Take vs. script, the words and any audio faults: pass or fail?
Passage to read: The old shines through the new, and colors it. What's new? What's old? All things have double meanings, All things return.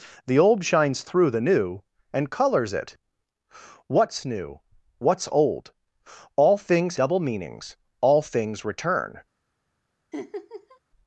fail